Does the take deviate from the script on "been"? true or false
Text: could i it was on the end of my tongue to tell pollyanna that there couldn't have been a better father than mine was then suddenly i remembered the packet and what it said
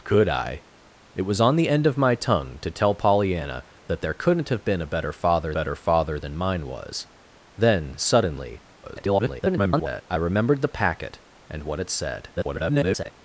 false